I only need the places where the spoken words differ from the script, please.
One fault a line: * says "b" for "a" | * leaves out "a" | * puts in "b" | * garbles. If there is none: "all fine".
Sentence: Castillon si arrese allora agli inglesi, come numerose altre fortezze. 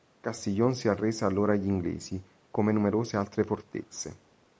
all fine